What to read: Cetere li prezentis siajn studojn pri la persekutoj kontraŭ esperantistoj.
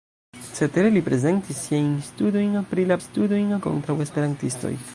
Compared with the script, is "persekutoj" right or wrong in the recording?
wrong